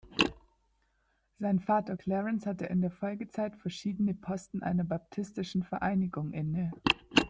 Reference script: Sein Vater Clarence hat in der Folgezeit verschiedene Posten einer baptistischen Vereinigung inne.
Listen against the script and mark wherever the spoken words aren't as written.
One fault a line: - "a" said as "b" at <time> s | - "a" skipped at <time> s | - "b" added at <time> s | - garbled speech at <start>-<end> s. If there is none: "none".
- "hat" said as "hatte" at 2.4 s